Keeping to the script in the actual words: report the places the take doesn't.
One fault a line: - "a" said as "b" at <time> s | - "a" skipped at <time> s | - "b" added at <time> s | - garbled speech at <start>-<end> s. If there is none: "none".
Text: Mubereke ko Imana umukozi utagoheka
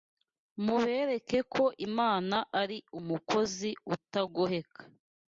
- "ari" added at 2.6 s